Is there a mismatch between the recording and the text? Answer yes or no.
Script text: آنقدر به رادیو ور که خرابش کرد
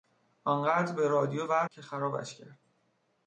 no